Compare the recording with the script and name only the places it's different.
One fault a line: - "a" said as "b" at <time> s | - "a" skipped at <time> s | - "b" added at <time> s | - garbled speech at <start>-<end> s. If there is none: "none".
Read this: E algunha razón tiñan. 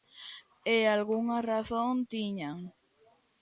none